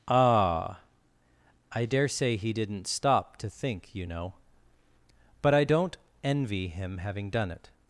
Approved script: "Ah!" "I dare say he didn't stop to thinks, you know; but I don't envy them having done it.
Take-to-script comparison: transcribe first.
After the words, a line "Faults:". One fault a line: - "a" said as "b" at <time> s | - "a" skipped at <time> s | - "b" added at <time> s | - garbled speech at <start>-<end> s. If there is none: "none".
"Ah!" "I dare say he didn't stop to think, you know; but I don't envy him having done it.
Faults:
- "thinks" said as "think" at 3.5 s
- "them" said as "him" at 6.7 s